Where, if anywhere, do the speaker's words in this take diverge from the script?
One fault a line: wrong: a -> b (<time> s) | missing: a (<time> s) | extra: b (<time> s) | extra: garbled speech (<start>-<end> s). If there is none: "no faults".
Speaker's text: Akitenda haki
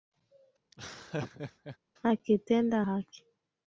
no faults